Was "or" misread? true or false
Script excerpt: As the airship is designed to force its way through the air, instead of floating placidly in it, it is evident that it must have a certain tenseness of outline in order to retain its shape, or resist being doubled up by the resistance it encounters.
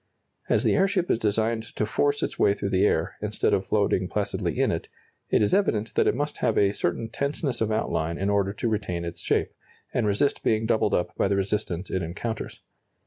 true